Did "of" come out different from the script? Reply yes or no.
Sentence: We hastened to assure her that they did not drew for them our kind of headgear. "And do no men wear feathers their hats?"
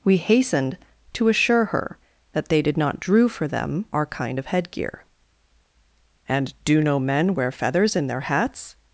no